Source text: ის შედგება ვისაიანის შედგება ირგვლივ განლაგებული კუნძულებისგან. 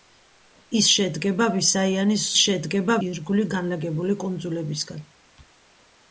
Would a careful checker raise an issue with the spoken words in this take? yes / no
no